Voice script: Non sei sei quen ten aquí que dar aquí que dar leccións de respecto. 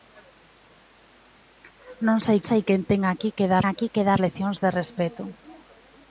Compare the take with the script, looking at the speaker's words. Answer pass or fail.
pass